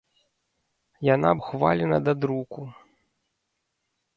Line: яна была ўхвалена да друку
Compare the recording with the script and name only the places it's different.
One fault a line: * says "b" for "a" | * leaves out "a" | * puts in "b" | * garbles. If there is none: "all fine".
* leaves out "была"